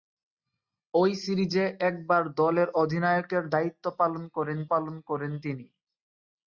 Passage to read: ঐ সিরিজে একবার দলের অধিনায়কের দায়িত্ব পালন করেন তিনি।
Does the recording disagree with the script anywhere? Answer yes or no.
yes